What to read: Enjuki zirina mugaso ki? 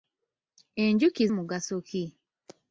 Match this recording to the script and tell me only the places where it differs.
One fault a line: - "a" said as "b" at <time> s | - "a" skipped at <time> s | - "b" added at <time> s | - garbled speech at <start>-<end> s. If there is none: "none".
- "zirina" skipped at 1.2 s